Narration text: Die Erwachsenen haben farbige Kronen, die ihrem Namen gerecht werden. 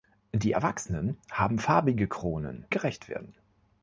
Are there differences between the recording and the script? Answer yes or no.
yes